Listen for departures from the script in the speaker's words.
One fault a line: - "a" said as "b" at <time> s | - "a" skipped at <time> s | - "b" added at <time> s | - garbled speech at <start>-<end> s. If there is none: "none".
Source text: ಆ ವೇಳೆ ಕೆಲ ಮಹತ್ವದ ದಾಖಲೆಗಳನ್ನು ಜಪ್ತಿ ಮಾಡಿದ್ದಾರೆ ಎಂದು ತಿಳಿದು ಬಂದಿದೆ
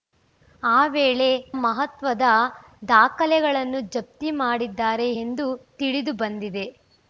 - "ಕೆಲ" skipped at 1.3 s